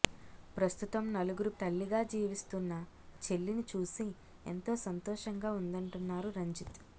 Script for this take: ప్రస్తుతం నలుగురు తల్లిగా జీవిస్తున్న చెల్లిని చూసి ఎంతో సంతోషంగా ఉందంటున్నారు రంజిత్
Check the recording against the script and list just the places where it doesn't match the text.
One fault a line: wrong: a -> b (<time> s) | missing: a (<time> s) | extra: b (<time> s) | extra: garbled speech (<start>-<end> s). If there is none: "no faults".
no faults